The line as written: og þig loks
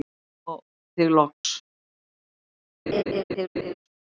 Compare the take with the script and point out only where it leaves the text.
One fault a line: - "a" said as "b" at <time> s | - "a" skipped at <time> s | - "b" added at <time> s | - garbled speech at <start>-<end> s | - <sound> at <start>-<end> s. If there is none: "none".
- dropout at 1.3-1.4 s
- laugh at 2.9-3.7 s